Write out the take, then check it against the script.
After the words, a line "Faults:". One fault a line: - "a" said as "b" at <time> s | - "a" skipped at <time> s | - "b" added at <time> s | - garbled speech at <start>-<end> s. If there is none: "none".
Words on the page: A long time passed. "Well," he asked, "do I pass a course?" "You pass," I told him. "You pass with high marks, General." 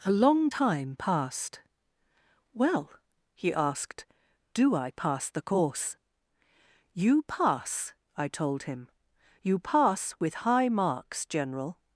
A long time passed. "Well," he asked, "do I pass the course?" "You pass," I told him. "You pass with high marks, General."
Faults:
- "a" said as "the" at 5.3 s